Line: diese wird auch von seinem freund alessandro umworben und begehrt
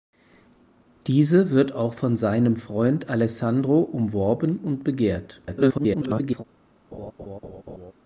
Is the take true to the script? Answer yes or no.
no